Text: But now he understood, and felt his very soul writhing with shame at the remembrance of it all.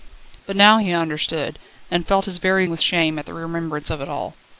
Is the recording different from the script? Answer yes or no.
yes